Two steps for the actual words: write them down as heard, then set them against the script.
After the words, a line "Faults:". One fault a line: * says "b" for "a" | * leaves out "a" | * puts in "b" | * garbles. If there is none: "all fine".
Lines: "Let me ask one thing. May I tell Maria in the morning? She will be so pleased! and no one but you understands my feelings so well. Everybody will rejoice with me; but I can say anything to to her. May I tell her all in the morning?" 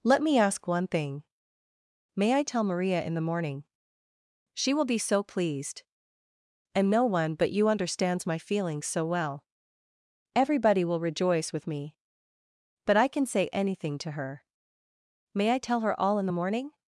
"Let me ask one thing. May I tell Maria in the morning? She will be so pleased! and no one but you understands my feelings so well. Everybody will rejoice with me; but I can say anything to her. May I tell her all in the morning?"
Faults:
* leaves out "to"